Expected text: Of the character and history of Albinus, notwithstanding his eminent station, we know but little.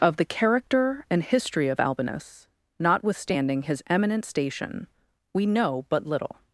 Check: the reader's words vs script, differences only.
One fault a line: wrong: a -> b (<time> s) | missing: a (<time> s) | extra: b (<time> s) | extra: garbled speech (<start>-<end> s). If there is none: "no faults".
no faults